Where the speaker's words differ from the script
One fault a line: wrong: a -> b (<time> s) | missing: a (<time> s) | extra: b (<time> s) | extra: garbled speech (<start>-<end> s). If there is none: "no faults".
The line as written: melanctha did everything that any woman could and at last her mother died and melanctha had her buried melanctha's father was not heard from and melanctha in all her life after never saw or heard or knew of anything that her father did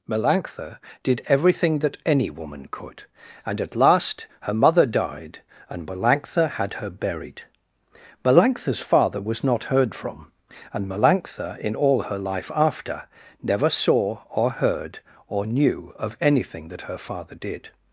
no faults